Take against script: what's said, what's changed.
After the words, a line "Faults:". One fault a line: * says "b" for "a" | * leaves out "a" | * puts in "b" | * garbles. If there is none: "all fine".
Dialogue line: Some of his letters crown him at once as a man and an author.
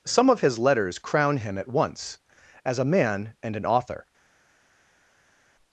Some of his letters crown him at once as a man and an author.
Faults:
all fine